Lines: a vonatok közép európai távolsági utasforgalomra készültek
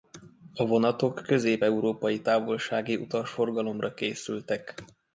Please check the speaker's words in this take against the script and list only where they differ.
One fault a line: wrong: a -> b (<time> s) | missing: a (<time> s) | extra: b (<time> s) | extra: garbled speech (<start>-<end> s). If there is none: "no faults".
no faults